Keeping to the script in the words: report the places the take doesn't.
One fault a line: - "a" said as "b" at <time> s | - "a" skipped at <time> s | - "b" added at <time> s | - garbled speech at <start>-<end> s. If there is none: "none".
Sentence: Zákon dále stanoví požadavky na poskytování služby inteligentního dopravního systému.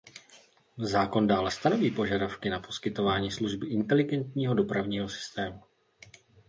none